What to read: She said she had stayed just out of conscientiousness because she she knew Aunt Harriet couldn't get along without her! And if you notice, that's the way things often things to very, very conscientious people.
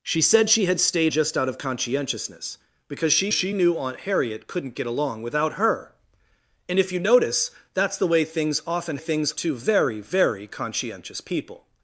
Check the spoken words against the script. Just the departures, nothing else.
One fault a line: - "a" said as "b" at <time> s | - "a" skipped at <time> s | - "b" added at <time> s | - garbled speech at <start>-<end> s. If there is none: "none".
none